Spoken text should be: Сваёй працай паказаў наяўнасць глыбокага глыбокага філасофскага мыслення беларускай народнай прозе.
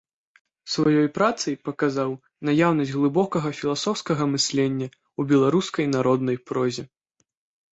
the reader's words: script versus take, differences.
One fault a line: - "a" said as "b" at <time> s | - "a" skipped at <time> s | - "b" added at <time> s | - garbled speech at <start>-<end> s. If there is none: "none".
- "глыбокага" skipped at 3.5 s
- "ў" added at 4.9 s